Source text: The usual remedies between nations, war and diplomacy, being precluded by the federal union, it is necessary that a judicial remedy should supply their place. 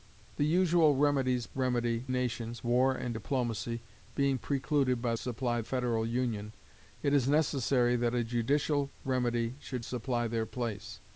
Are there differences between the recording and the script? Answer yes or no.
yes